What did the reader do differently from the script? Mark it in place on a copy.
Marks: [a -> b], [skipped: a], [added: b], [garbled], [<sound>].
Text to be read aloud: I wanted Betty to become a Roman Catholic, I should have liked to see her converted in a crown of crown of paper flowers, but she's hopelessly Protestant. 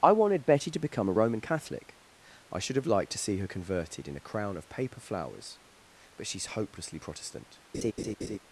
I wanted Betty to become a Roman Catholic, I should have liked to see her converted in a crown of [skipped: crown of] paper flowers, but she's hopelessly Protestant. [laugh]